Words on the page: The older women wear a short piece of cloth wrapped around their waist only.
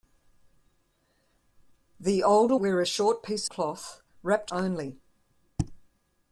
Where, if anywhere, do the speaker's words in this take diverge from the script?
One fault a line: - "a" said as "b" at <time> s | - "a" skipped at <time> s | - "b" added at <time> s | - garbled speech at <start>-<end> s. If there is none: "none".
- "women" skipped at 2.5 s
- "of" skipped at 3.5 s
- "around their waist" skipped at 4.5 s